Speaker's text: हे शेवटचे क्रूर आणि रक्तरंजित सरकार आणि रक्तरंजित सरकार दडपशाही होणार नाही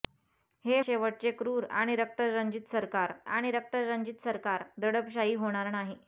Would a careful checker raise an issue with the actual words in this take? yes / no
no